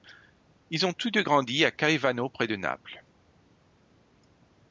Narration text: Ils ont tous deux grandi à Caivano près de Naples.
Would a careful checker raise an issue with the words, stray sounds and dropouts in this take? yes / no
no